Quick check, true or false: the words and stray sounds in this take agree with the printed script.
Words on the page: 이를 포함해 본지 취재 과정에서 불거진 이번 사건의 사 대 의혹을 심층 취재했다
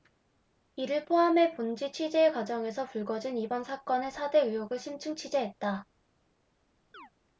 false